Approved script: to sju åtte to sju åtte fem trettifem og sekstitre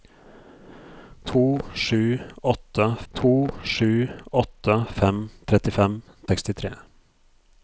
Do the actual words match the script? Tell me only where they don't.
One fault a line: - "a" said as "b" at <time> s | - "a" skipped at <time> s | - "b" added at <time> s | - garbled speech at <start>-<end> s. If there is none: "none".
none